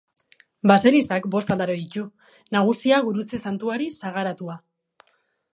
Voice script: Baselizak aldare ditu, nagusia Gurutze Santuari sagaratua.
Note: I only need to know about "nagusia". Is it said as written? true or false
true